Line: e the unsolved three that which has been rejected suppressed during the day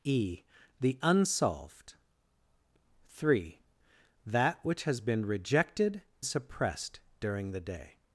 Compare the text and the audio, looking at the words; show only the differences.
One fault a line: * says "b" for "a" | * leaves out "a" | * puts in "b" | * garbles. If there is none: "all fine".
all fine